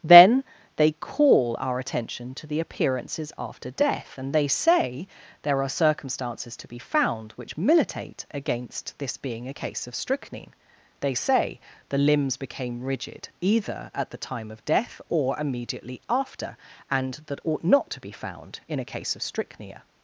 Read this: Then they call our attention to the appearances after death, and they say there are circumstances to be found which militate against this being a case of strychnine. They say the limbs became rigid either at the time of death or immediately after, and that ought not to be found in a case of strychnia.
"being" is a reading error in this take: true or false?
false